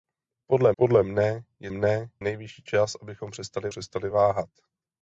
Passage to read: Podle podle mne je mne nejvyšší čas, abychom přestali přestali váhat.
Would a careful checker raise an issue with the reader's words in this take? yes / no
no